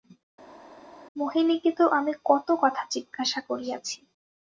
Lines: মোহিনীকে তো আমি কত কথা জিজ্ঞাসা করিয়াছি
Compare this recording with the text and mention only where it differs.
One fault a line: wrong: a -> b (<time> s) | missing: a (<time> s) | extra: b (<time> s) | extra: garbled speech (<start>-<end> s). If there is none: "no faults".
no faults